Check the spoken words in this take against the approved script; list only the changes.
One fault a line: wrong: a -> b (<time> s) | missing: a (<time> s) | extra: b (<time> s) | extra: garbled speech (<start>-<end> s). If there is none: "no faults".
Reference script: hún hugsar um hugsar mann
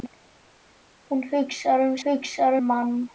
no faults